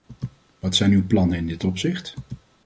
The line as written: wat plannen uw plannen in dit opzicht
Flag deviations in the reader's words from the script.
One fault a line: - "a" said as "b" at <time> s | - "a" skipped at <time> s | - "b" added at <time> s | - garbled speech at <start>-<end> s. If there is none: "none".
- "plannen" said as "zijn" at 0.8 s